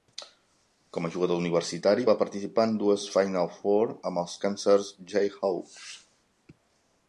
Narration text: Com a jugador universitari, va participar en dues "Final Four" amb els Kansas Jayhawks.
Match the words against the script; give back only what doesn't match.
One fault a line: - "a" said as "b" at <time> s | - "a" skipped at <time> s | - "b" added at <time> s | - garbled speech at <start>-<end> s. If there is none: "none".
none